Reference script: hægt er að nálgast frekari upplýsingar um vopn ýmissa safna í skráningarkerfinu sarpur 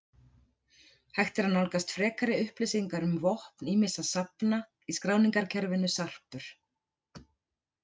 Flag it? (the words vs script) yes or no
no